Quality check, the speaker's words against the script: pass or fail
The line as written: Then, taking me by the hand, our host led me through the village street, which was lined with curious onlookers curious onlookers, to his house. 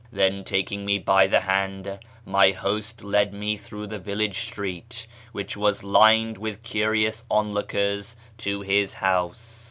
fail